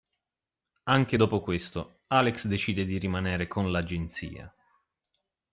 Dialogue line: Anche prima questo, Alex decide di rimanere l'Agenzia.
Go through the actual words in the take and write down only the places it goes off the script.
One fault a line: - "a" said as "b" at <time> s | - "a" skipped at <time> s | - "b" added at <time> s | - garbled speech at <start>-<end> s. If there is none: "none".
- "prima" said as "dopo" at 1.2 s
- "con" added at 3.5 s